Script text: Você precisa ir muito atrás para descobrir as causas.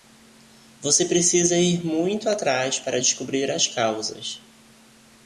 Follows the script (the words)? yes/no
yes